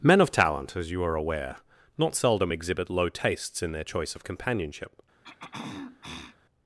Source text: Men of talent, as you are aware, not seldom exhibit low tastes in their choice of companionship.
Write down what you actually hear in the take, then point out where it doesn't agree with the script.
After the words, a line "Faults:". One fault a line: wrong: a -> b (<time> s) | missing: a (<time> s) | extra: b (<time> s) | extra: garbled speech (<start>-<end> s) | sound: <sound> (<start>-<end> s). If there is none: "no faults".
Men of talent, as you are aware, not seldom exhibit low tastes in their choice of companionship.
Faults:
sound: throat clearing (5.2-6.4 s)